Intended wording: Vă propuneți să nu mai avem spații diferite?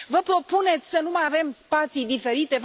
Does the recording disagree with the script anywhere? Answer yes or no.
no